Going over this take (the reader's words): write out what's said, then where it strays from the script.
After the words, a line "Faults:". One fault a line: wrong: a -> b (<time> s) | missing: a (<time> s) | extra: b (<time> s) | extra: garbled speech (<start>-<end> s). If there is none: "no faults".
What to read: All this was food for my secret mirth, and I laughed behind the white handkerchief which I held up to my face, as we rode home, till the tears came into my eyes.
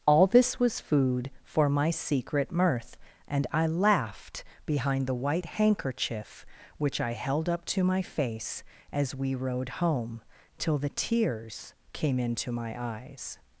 All this was food for my secret mirth, and I laughed behind the white handkerchief which I held up to my face, as we rode home, till the tears came into my eyes.
Faults:
no faults